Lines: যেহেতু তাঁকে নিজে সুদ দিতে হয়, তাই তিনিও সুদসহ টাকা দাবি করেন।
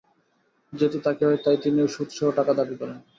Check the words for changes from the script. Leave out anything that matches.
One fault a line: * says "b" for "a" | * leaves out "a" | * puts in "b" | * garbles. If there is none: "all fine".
* leaves out "নিজে সুদ দিতে"